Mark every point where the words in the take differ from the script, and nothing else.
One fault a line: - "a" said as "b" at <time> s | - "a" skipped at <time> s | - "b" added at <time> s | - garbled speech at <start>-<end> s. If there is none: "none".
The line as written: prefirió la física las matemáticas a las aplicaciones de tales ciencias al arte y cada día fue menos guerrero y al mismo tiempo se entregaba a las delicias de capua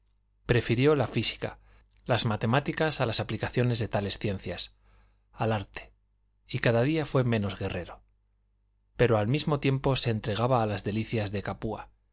- "y" said as "pero" at 8.9 s